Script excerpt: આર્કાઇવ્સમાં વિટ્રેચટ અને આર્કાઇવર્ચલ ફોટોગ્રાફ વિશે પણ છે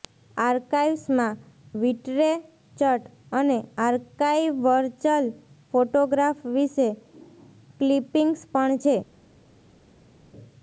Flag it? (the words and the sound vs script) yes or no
yes